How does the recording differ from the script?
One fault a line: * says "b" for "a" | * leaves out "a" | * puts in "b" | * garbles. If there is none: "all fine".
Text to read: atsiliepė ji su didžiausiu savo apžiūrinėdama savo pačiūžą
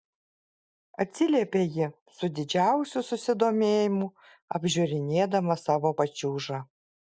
* says "susidomėjimu" for "savo"